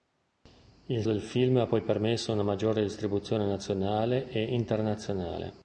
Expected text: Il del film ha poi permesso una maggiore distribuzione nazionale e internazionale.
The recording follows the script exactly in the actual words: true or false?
true